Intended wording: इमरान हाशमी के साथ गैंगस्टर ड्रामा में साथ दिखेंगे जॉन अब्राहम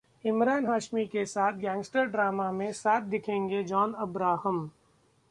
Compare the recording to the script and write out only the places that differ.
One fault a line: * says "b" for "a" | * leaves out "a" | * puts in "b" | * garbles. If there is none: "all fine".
all fine